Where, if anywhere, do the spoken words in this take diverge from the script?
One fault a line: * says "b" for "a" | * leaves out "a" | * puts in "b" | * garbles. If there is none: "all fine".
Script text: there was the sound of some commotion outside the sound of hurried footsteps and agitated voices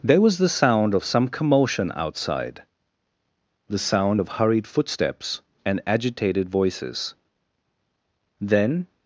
* puts in "then"